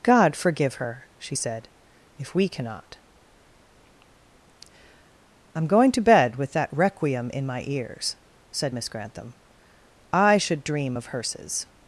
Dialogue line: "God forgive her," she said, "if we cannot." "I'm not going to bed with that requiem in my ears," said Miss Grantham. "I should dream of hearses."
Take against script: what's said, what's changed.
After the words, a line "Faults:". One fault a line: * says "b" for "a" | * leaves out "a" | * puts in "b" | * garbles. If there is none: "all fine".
"God forgive her," she said, "if we cannot." "I'm going to bed with that requiem in my ears," said Miss Grantham. "I should dream of hearses."
Faults:
* leaves out "not"